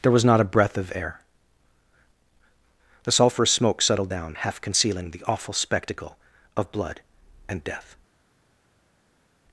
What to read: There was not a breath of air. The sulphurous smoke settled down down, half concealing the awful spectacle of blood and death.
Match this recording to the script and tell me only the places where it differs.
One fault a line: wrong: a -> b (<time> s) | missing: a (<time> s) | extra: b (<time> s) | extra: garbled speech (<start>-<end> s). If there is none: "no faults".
missing: down (4.3 s)